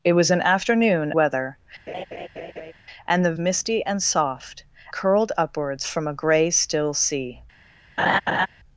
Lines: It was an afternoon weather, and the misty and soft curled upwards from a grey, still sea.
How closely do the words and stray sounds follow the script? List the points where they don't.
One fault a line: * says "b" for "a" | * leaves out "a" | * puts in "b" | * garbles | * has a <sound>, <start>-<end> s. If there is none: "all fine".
* has a laugh, 1.9-2.7 s
* has a laugh, 8.0-8.5 s